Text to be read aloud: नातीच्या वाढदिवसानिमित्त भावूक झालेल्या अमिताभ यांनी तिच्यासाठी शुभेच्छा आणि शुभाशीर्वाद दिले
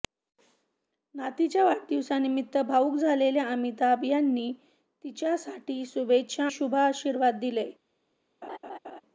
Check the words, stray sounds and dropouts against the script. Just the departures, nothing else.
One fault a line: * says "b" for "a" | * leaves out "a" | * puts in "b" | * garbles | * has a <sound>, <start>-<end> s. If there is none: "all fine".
* leaves out "आणि"
* has a laugh, 8.4-9.0 s